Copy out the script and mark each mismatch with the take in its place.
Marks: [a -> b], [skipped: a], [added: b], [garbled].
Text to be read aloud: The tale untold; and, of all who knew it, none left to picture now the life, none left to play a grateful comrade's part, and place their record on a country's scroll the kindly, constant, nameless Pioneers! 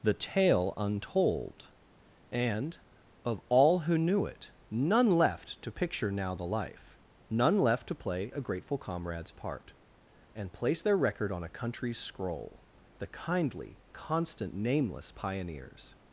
The tale untold; and, of all who knew it, none left to picture now the life, none left to play a grateful comrade's part, and place their record on a country's scroll the kindly, constant, nameless Pioneers!